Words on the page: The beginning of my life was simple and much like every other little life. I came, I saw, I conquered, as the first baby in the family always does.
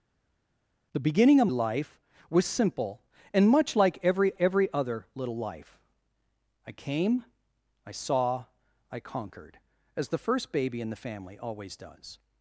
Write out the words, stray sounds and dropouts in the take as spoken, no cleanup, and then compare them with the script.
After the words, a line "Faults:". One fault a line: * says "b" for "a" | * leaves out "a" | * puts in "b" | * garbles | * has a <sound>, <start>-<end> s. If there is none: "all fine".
The beginning of life was simple and much like every every other little life. I came, I saw, I conquered, as the first baby in the family always does.
Faults:
* leaves out "my"
* puts in "every"